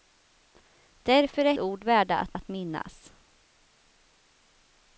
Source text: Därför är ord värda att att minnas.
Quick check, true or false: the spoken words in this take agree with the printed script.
true